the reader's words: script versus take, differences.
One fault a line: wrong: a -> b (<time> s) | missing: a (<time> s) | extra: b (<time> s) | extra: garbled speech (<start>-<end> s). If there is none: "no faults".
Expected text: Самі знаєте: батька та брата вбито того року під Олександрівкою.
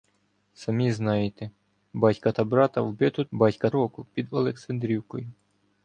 wrong: того -> батька (3.3 s)